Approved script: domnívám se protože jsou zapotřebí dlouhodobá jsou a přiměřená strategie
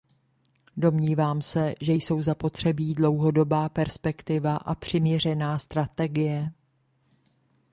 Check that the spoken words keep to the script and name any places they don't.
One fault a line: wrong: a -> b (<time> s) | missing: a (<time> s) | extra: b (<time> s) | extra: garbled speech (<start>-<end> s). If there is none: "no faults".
wrong: protože -> že (1.8 s)
wrong: jsou -> perspektiva (3.7 s)